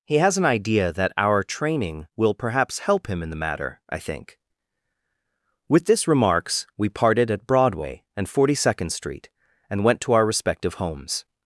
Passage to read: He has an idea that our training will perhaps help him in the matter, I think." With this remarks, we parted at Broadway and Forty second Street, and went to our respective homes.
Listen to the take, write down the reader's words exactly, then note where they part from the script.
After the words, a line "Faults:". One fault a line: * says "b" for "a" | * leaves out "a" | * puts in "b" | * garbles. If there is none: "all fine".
He has an idea that our training will perhaps help him in the matter, I think." With this remarks, we parted at Broadway and Forty second Street, and went to our respective homes.
Faults:
all fine